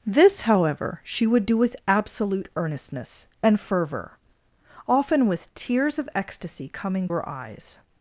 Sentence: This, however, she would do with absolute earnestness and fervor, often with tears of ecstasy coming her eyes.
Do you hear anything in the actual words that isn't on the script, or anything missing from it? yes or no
no